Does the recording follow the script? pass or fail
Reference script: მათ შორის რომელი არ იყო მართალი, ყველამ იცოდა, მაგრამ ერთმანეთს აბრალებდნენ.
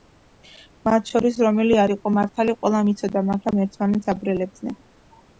pass